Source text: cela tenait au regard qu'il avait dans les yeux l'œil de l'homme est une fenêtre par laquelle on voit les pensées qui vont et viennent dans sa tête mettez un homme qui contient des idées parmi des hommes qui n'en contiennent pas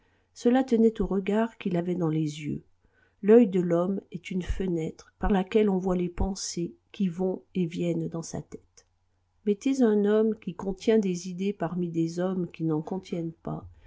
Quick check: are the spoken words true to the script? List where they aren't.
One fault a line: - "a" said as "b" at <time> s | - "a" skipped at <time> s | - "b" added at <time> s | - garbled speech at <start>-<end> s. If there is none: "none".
none